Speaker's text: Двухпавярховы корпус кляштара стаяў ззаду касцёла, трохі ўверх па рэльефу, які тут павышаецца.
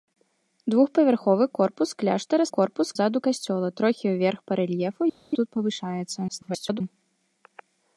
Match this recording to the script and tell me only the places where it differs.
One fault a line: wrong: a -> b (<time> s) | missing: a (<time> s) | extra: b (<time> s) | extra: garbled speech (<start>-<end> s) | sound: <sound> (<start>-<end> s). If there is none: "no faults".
wrong: стаяў -> корпус (2.6 s)
missing: які (5.0 s)
extra: garbled speech (6.3-6.8 s)